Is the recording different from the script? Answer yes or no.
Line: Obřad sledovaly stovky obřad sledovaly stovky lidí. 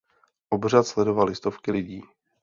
yes